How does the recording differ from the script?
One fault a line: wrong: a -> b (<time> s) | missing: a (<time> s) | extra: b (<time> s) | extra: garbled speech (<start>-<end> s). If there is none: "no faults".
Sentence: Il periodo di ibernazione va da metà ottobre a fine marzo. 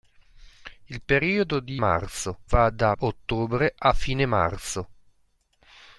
wrong: ibernazione -> marzo (1.8 s)
missing: metà (2.9 s)